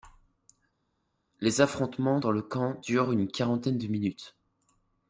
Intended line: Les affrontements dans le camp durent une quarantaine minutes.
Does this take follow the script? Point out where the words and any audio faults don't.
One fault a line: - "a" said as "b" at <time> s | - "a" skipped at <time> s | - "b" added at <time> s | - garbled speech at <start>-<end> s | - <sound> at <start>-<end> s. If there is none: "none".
- "de" added at 3.8 s